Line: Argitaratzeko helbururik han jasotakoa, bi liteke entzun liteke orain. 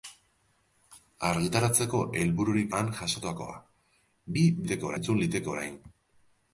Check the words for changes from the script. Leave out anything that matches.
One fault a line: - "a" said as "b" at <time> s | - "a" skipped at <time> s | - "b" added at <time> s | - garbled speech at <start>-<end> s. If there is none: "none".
none